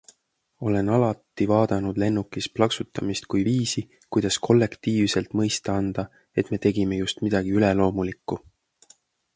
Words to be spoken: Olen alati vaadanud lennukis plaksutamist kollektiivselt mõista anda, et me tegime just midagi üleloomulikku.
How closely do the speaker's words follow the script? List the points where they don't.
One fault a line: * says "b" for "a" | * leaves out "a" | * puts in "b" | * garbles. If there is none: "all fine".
* puts in "kui viisi kuidas"